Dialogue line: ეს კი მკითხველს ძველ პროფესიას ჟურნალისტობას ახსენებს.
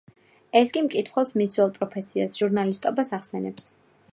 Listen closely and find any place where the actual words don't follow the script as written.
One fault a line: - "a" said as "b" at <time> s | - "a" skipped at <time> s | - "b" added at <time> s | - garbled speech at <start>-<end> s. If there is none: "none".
- "მის" added at 1.4 s